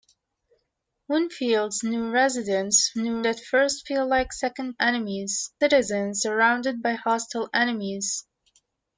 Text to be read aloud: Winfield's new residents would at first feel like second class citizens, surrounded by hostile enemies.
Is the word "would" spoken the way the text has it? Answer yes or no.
no